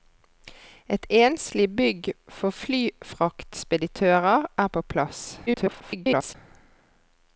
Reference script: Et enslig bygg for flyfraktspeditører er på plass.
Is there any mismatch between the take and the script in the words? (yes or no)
yes